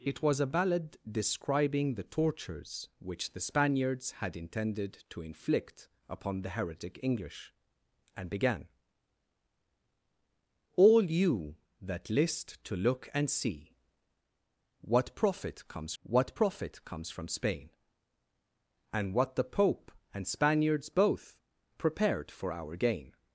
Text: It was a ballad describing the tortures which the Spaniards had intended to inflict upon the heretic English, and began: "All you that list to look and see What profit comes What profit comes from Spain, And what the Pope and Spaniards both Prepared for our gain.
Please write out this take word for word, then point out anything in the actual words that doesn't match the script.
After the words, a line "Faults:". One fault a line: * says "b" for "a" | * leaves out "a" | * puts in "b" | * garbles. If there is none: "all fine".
It was a ballad describing the tortures which the Spaniards had intended to inflict upon the heretic English, and began: "All you that list to look and see What profit comes What profit comes from Spain, And what the Pope and Spaniards both Prepared for our gain.
Faults:
all fine